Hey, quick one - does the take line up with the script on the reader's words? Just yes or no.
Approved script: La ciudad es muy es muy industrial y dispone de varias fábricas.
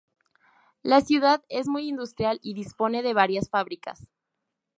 no